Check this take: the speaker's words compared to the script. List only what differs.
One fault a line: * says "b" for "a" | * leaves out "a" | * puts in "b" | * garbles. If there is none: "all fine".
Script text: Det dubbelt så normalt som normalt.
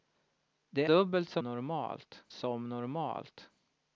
all fine